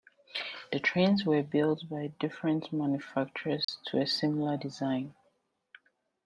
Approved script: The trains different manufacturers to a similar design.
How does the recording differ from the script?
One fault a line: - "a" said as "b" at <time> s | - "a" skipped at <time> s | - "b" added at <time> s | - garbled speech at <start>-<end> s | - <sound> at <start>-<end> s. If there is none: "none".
- "were built by" added at 1.3 s
- dropout at 3.6-3.7 s